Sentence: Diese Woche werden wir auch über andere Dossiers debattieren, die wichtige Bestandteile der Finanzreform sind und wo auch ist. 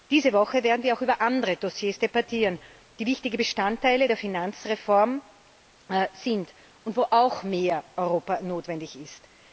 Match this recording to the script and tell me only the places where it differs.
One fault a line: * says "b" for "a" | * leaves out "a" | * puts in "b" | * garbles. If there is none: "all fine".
* puts in "mehr Europa notwendig"